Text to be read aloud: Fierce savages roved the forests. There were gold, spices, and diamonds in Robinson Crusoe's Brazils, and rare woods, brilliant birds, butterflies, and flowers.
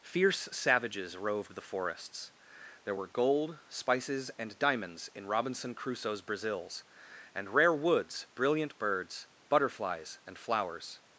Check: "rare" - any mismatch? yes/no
no